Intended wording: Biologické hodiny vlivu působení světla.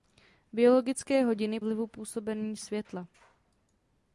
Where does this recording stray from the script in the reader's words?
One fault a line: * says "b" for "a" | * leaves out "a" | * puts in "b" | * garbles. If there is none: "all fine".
all fine